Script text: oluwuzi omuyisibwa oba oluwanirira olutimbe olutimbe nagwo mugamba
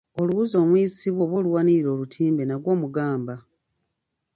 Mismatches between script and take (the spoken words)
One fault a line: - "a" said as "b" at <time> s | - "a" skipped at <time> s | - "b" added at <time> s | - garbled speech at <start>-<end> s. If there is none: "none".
- "olutimbe" skipped at 2.4 s